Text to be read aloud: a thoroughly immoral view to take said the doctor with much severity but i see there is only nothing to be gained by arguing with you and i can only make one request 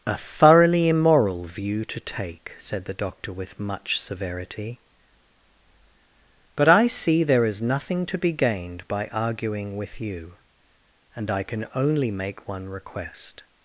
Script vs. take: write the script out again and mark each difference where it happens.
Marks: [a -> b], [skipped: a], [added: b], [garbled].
a thoroughly immoral view to take said the doctor with much severity but i see there is [skipped: only] nothing to be gained by arguing with you and i can only make one request